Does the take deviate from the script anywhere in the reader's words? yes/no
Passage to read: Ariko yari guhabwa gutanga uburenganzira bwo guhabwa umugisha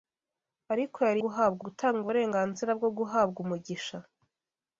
no